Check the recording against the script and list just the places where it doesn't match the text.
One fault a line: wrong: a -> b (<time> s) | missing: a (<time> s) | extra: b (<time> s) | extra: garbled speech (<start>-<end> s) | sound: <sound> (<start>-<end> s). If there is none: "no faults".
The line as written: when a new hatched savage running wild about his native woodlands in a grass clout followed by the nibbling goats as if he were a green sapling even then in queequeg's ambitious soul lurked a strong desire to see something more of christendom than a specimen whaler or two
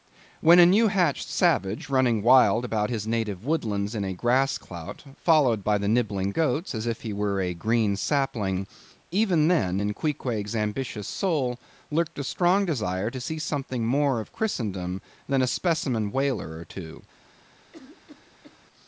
sound: cough (17.7-18.6 s)